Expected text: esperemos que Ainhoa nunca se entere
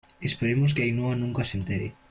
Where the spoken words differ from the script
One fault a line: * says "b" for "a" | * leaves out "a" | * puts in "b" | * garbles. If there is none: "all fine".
all fine